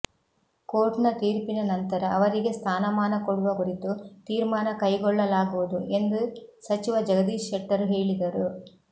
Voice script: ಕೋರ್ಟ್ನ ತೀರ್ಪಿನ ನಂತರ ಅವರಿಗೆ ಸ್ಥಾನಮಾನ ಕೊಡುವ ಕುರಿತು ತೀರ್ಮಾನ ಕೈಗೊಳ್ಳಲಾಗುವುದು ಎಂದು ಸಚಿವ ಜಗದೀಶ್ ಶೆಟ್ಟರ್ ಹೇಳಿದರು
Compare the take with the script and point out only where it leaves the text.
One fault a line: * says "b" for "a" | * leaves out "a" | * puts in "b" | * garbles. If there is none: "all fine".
all fine